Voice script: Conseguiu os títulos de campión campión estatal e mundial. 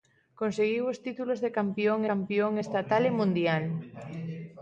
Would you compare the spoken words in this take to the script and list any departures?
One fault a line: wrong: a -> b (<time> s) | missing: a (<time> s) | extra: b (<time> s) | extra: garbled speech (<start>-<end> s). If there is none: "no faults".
no faults